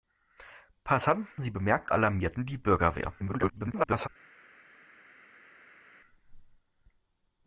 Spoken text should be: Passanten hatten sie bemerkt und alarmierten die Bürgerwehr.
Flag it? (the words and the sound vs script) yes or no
yes